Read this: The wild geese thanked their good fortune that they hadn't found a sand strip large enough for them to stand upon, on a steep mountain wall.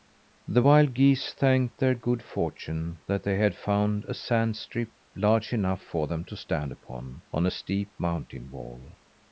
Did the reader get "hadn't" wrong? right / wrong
wrong